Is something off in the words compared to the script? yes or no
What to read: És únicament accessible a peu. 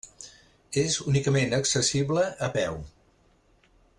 no